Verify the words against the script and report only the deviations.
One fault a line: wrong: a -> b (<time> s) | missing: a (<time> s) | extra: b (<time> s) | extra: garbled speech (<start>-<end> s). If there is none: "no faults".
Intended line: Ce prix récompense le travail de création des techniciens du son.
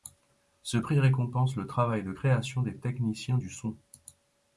no faults